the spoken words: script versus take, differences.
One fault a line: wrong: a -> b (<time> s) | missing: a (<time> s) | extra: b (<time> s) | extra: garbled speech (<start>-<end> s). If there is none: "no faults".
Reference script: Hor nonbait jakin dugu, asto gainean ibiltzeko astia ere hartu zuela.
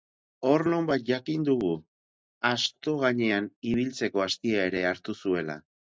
no faults